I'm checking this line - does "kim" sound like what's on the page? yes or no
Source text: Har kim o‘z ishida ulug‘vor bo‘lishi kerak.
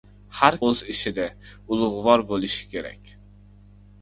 no